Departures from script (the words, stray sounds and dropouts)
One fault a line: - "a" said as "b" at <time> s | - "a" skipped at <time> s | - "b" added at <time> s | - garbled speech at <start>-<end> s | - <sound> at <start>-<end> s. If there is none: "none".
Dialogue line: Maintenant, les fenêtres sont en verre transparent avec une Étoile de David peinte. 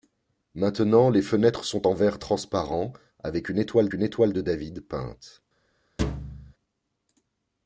- "une Étoile" added at 3.9 s
- thud at 6.0-6.5 s